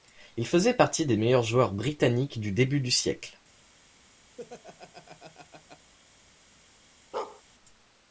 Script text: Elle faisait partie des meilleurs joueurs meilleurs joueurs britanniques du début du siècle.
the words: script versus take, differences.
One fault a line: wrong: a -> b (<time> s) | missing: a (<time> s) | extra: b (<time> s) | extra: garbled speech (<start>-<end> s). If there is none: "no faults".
wrong: Elle -> Il (0.3 s)
missing: meilleurs joueurs (1.7 s)